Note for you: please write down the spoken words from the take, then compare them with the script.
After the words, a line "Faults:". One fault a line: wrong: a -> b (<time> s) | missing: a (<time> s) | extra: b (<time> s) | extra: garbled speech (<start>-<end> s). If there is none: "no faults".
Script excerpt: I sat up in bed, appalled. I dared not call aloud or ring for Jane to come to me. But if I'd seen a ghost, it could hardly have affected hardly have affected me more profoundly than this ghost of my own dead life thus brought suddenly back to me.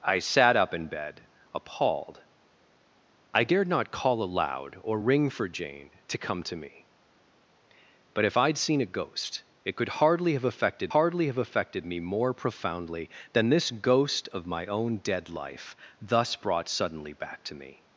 I sat up in bed, appalled. I dared not call aloud or ring for Jane to come to me. But if I'd seen a ghost, it could hardly have affected hardly have affected me more profoundly than this ghost of my own dead life thus brought suddenly back to me.
Faults:
no faults